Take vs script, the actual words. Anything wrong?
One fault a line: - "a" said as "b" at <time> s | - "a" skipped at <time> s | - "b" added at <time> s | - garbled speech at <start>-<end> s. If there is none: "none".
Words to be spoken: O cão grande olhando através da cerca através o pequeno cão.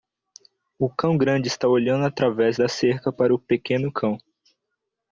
- "está" added at 1.5 s
- "através" said as "para" at 3.1 s